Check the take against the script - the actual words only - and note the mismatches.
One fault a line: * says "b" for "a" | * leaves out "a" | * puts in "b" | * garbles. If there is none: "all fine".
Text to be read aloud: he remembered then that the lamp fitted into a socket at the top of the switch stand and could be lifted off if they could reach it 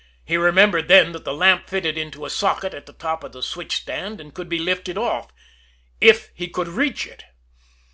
* says "he" for "they"